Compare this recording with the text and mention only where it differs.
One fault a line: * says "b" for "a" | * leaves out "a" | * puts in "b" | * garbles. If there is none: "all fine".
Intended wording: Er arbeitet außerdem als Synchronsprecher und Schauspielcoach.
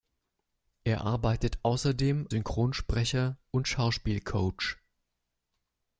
* leaves out "als"